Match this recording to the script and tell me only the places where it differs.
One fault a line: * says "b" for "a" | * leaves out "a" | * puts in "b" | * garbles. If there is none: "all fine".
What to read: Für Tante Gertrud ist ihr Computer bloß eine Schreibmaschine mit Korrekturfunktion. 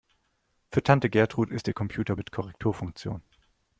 * leaves out "bloß eine Schreibmaschine"